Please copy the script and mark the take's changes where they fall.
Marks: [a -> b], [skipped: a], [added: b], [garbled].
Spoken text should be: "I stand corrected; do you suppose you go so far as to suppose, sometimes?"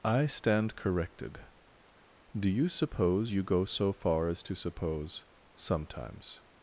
"I stand corrected; do you suppose you go so far as to suppose, sometimes?"